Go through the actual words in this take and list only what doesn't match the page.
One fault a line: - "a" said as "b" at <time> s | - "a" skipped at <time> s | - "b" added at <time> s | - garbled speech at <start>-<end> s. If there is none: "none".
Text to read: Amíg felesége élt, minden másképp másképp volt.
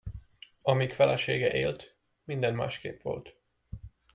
- "másképp" skipped at 3.0 s